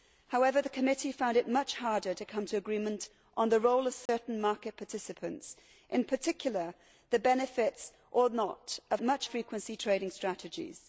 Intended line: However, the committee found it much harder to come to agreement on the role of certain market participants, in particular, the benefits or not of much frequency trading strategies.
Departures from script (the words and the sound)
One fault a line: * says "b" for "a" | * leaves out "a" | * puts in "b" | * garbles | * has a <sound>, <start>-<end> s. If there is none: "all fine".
* has a dropout, 4.1-4.1 s